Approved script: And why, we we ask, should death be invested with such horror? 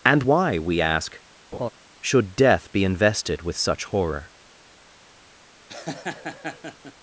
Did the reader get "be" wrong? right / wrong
right